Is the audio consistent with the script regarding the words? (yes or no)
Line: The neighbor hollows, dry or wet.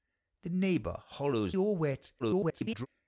no